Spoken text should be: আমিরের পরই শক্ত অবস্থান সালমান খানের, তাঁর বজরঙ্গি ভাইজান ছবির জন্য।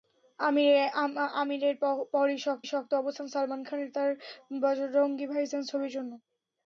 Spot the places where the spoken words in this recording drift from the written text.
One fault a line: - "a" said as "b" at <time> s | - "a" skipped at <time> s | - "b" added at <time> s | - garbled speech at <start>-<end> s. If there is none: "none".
- "শক্ত" added at 2.7 s